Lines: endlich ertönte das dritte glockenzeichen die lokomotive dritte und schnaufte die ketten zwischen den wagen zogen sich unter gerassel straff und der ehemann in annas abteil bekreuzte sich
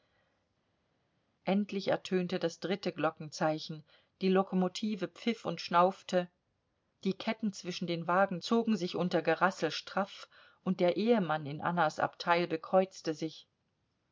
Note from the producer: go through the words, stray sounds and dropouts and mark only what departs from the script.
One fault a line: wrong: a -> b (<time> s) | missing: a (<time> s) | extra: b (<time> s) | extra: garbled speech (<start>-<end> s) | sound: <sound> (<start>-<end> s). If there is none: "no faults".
wrong: dritte -> pfiff (5.1 s)